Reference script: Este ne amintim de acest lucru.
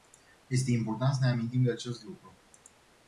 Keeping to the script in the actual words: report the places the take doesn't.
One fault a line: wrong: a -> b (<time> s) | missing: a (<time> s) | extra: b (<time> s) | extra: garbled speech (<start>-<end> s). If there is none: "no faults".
extra: important să (0.7 s)